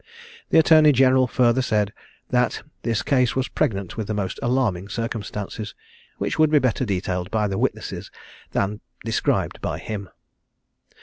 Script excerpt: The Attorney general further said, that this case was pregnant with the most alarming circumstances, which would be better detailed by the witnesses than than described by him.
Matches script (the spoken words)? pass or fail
fail